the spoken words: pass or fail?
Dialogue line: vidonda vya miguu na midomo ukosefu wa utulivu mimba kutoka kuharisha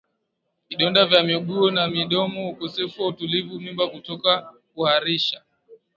pass